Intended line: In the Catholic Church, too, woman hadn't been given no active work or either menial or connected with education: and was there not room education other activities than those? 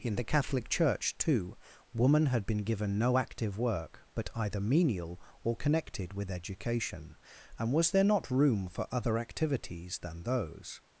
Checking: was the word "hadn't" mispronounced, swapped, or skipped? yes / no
yes